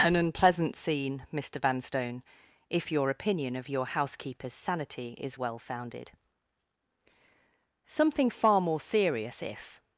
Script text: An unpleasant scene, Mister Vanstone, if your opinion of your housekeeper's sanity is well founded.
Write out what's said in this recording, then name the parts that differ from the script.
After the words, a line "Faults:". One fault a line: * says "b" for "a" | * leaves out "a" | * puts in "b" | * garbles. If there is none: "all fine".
An unpleasant scene, Mister Vanstone, if your opinion of your housekeeper's sanity is well founded. Something far more serious, if
Faults:
* puts in "Something far more serious if"